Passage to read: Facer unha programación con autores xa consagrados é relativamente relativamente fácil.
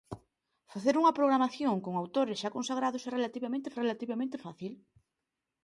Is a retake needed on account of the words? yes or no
no